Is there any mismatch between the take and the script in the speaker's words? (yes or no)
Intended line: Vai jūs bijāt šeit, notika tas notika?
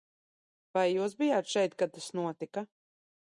yes